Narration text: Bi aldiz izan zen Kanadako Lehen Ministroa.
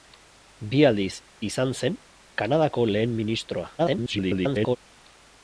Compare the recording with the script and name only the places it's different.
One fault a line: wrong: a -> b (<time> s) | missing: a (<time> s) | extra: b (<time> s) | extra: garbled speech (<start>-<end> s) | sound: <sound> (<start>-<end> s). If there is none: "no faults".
extra: garbled speech (3.8-4.8 s)